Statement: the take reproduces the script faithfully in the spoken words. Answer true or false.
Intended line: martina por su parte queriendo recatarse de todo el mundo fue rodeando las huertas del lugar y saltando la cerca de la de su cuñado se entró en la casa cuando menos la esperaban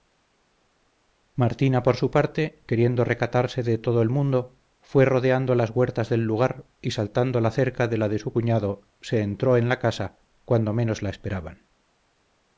true